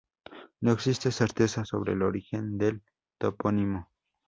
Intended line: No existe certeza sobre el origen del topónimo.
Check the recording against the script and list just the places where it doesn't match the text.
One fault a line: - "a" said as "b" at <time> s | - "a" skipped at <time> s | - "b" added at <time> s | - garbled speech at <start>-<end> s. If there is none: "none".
none